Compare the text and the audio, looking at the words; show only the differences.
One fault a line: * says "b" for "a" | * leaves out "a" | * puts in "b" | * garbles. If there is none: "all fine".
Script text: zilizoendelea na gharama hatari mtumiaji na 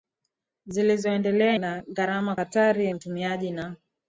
all fine